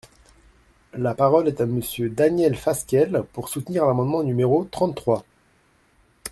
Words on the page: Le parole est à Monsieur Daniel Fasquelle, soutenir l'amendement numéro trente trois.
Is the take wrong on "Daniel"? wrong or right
right